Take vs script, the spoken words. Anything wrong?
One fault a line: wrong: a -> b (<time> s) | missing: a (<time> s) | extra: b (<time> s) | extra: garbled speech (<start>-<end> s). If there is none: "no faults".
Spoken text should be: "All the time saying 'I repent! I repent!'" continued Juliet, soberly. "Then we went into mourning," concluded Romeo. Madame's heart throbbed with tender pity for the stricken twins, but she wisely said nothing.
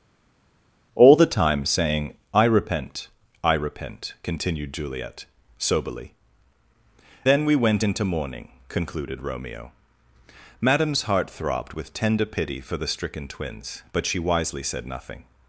no faults